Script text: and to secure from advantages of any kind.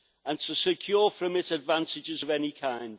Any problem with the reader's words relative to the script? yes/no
yes